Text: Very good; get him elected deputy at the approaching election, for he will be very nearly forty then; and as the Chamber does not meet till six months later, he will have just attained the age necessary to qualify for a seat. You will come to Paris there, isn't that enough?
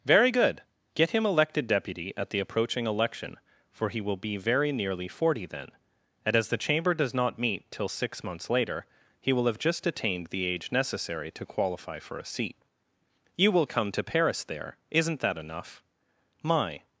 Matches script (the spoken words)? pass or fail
fail